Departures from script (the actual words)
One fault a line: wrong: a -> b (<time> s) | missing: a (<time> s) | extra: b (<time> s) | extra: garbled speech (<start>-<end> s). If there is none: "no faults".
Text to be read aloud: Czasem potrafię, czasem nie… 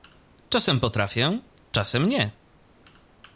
no faults